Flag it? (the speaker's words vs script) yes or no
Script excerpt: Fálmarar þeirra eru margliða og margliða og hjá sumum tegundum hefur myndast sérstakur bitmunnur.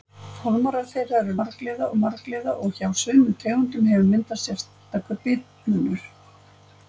no